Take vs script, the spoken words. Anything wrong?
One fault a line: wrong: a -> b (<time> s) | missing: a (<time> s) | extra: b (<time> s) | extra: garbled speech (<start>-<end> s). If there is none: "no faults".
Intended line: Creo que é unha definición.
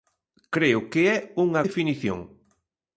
no faults